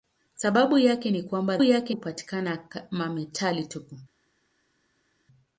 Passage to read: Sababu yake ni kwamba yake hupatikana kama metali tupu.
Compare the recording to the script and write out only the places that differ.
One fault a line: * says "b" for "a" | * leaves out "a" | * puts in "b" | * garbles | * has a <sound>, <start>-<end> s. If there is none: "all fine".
all fine